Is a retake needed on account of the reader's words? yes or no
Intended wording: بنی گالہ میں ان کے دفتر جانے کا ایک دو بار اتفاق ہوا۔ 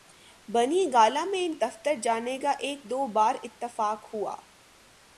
yes